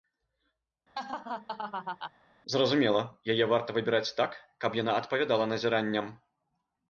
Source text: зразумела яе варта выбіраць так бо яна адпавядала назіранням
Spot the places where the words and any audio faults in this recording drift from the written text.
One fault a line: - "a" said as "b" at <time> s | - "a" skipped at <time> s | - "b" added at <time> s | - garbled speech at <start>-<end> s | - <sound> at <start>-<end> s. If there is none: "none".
- laugh at 0.9-2.1 s
- "бо" said as "каб" at 4.7 s